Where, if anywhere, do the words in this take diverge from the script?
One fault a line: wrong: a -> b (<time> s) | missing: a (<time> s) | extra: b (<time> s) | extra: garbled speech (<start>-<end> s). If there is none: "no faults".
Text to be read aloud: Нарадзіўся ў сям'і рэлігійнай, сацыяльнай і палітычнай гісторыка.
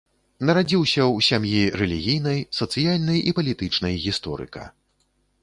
no faults